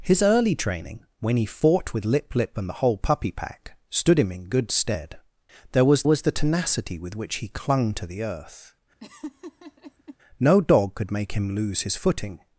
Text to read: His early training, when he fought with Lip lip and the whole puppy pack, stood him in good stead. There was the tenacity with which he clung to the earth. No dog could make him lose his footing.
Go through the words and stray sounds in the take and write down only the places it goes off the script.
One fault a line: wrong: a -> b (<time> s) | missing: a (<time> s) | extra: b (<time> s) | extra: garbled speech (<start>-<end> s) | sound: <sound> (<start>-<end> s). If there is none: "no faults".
extra: was (6.0 s)
sound: laugh (9.0-10.2 s)